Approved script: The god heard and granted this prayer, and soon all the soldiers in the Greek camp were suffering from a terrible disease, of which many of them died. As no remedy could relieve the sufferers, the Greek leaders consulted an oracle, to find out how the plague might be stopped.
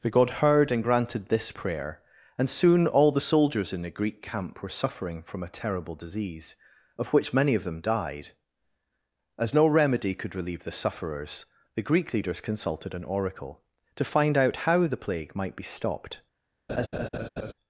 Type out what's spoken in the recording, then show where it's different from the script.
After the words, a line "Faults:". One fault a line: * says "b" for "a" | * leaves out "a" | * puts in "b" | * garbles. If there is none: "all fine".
The god heard and granted this prayer, and soon all the soldiers in the Greek camp were suffering from a terrible disease, of which many of them died. As no remedy could relieve the sufferers, the Greek leaders consulted an oracle, to find out how the plague might be stopped.
Faults:
all fine